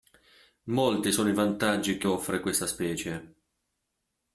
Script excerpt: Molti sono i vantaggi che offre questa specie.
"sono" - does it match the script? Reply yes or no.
yes